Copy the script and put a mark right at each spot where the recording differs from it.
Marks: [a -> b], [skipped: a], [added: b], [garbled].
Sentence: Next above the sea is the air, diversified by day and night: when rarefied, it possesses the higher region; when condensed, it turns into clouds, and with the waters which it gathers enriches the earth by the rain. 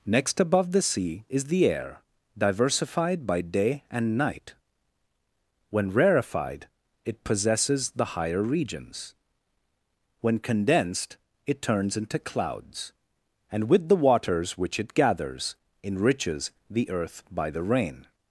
Next above the sea is the air, diversified by day and night: when rarefied, it possesses the higher [region; -> regions] when condensed, it turns into clouds, and with the waters which it gathers enriches the earth by the rain.